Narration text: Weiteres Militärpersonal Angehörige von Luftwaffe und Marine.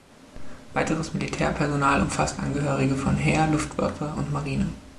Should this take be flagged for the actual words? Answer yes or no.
yes